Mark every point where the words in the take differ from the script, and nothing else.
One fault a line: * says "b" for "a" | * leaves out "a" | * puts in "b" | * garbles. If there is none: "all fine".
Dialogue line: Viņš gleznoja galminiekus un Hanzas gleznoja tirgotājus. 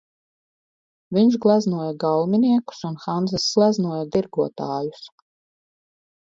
all fine